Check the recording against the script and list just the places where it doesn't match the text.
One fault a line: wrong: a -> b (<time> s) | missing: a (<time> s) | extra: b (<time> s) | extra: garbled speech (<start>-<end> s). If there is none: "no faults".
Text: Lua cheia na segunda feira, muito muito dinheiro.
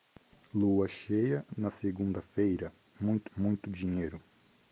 no faults